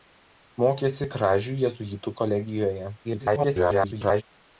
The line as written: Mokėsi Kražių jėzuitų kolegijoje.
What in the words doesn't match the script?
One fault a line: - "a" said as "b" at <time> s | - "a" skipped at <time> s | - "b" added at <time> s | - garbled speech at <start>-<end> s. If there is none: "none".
- garbled speech at 3.0-4.2 s